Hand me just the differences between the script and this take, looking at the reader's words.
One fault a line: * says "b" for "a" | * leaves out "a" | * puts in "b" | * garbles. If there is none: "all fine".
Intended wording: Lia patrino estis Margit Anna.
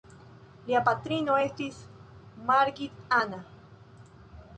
all fine